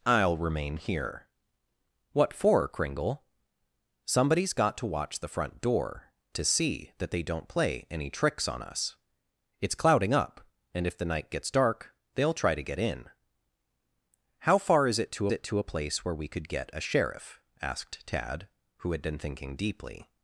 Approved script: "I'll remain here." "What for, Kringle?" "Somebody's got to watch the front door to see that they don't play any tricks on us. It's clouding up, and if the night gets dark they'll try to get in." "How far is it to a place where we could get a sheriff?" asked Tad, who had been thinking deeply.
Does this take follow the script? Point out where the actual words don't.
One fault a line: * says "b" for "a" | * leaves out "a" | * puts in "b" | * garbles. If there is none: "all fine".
* puts in "it to"